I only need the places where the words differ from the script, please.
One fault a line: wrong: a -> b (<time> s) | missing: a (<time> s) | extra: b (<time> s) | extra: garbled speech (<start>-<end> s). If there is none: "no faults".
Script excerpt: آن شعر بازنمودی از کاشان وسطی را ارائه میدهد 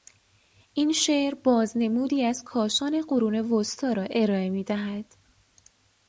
wrong: آن -> این (0.7 s)
extra: قرون (3.0 s)